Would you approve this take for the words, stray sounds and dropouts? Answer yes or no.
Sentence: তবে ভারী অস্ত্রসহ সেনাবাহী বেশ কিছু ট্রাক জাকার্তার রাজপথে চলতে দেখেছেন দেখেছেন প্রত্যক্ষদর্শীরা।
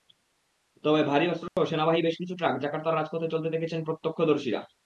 no